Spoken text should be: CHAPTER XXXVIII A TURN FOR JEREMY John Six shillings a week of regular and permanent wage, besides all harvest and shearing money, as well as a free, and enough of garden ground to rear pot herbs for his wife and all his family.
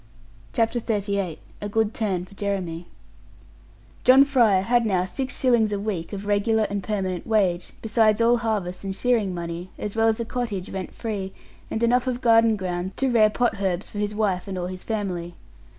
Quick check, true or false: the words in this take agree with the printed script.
false